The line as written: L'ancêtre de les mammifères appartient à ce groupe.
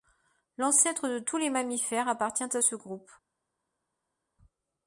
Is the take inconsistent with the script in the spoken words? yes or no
yes